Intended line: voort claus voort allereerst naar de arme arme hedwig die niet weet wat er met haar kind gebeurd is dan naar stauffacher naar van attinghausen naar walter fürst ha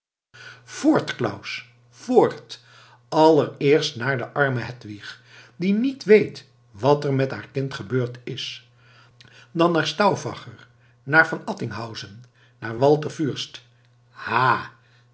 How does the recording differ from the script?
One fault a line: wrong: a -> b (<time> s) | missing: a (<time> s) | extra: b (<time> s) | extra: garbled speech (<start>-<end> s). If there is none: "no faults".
missing: arme (4.6 s)